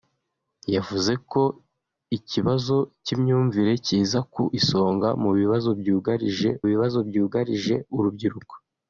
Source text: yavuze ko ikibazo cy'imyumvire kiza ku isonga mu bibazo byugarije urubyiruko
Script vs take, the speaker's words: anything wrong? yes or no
yes